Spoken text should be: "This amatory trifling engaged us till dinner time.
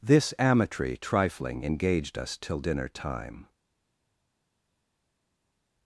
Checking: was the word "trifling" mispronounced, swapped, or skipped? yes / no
no